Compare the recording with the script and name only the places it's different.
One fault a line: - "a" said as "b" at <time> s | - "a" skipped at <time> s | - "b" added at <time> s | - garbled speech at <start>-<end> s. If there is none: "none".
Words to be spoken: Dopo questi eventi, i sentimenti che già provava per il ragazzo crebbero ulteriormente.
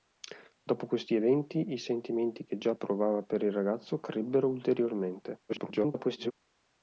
- garbled speech at 5.5-6.3 s